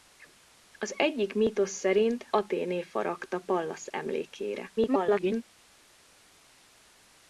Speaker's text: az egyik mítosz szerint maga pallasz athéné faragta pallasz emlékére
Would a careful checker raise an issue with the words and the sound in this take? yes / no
yes